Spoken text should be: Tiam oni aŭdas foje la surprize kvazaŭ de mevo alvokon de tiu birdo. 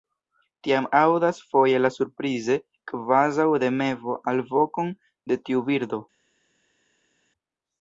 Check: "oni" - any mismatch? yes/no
yes